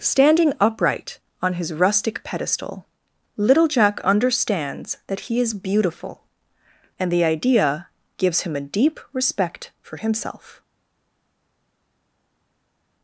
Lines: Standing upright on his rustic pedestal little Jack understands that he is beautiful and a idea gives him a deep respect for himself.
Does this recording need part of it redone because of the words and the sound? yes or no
yes